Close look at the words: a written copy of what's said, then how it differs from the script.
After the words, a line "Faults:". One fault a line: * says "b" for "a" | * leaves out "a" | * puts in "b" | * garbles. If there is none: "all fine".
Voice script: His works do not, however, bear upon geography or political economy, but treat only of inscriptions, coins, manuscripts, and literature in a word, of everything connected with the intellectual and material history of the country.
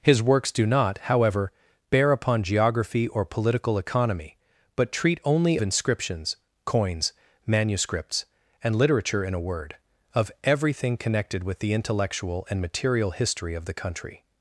His works do not, however, bear upon geography or political economy, but treat only inscriptions, coins, manuscripts, and literature in a word, of everything connected with the intellectual and material history of the country.
Faults:
* leaves out "of"